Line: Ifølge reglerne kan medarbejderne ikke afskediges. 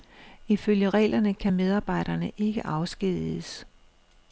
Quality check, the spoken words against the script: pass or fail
pass